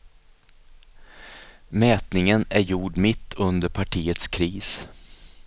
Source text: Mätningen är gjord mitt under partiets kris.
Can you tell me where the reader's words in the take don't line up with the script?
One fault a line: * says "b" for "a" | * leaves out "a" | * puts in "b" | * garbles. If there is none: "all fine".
all fine